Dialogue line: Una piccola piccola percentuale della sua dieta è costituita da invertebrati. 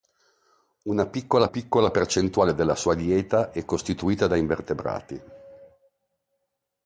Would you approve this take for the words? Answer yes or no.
yes